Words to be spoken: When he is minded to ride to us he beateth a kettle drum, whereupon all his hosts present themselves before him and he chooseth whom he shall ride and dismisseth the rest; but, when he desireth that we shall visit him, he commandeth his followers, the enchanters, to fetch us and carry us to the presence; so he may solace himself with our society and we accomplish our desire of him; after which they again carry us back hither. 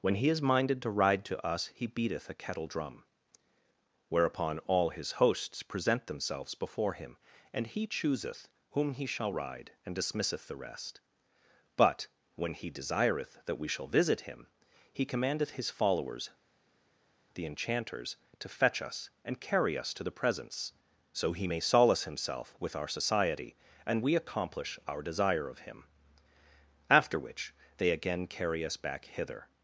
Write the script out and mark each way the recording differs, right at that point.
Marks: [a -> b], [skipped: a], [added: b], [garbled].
When he is minded to ride to us he beateth a kettle drum, whereupon all his hosts present themselves before him and he chooseth whom he shall ride and dismisseth the rest; but, when he desireth that we shall visit him, he commandeth his followers, the enchanters, to fetch us and carry us to the presence; so he may solace himself with our society and we accomplish our desire of him; after which they again carry us back hither.